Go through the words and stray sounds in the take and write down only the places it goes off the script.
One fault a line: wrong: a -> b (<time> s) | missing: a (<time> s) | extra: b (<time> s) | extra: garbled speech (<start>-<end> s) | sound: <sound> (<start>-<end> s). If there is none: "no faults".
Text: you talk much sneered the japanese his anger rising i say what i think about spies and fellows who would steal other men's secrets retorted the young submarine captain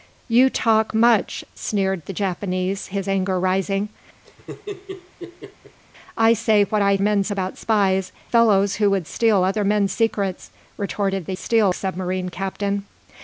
sound: laugh (4.2-5.8 s)
wrong: think -> men's (7.0 s)
missing: and (8.1 s)
wrong: young -> steal (11.4 s)